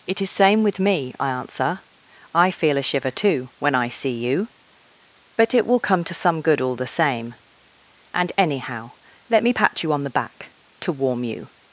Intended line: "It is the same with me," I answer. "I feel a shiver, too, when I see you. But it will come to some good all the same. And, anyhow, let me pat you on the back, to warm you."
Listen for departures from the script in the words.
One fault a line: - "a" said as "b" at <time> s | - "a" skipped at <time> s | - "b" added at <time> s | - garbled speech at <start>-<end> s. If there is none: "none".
- "the" skipped at 0.3 s